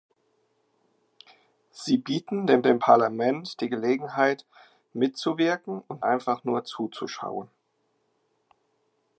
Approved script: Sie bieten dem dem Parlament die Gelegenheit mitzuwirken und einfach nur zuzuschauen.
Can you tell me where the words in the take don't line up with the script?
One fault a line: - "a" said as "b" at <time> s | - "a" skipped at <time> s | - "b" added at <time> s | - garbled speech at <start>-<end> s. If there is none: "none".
none